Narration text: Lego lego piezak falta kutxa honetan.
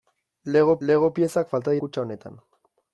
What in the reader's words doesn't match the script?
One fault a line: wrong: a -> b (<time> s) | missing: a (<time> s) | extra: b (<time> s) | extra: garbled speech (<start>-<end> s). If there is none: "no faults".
no faults